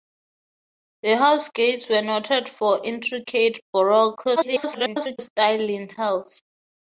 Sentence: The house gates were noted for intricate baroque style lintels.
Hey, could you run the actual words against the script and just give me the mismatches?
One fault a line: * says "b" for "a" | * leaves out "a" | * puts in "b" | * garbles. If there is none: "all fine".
* garbles